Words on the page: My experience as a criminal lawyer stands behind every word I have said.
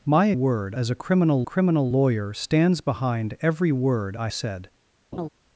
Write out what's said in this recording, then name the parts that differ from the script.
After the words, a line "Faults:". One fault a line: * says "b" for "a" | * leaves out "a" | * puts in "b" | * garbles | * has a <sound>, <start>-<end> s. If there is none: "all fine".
My word as a criminal criminal lawyer stands behind every word I said.
Faults:
* says "word" for "experience"
* puts in "criminal"
* leaves out "have"
* has a laugh, 5.1-5.3 s